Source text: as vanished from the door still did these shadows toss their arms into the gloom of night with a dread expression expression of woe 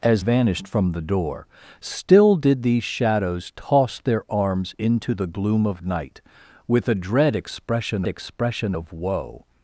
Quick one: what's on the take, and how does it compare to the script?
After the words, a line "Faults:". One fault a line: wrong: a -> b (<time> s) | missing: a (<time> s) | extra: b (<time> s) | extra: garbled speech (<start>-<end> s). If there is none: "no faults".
as vanished from the door still did these shadows toss their arms into the gloom of night with a dread expression expression of woe
Faults:
no faults